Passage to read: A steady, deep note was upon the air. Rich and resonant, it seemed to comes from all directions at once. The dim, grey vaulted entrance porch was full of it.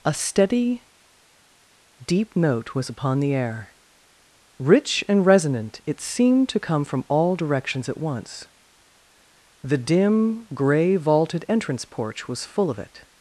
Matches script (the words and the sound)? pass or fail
fail